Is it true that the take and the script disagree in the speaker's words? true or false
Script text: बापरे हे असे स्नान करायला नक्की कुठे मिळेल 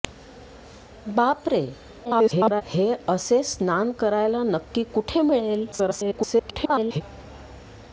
true